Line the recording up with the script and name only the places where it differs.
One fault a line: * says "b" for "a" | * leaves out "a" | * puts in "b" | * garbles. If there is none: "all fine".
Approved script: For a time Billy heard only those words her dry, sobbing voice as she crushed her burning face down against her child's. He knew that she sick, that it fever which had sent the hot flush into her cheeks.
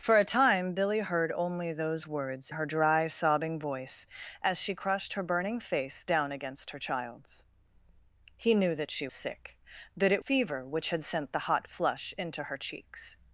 all fine